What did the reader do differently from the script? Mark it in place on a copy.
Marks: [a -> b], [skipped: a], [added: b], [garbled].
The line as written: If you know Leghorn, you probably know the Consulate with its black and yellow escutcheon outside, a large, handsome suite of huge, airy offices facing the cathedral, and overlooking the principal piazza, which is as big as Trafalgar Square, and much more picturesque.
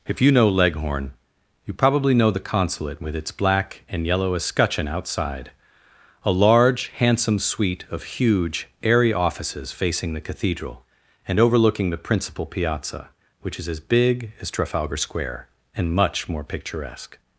If you know Leghorn, you probably know the Consulate with its black and yellow escutcheon outside, a large, handsome suite of huge, airy offices facing the cathedral, and overlooking the principal piazza, which is as big as Trafalgar Square, and much more picturesque.